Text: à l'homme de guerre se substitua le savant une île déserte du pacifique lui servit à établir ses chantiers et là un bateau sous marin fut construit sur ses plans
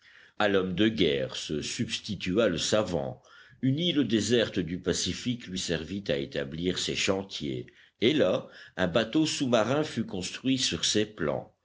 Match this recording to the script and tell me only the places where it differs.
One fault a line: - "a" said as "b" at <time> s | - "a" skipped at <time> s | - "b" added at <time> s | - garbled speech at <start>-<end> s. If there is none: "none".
none